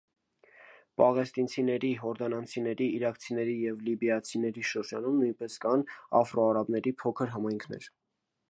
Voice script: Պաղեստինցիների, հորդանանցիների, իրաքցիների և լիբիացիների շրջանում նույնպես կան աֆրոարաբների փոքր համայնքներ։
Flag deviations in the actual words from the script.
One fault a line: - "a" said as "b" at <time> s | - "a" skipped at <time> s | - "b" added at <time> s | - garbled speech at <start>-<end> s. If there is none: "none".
none